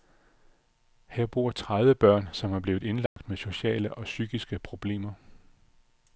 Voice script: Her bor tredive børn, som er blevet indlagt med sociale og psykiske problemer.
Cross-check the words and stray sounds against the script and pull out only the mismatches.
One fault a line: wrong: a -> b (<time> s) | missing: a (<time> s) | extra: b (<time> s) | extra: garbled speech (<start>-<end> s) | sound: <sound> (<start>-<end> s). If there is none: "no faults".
sound: dropout (3.1-3.2 s)